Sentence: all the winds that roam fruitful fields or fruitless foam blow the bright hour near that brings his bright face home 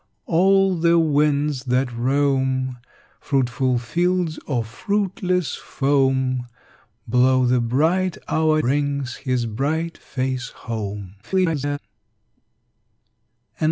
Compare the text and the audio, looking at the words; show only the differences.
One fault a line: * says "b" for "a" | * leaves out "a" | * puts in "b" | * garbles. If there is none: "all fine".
* leaves out "near that"
* garbles